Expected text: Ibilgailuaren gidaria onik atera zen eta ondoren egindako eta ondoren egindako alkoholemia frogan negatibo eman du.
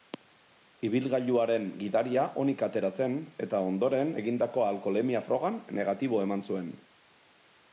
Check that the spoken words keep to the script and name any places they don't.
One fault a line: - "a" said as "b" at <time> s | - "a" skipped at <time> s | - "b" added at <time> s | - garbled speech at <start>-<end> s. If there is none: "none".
- "eta ondoren egindako" skipped at 4.7 s
- "du" said as "zuen" at 6.5 s